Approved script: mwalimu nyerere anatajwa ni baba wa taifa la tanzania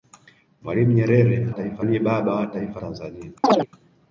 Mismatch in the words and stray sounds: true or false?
true